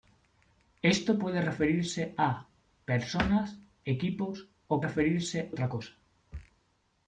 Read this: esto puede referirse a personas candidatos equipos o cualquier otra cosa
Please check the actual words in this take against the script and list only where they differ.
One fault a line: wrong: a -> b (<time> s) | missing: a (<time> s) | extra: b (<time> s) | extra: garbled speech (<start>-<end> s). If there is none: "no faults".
missing: candidatos (3.6 s)
wrong: cualquier -> referirse (4.8 s)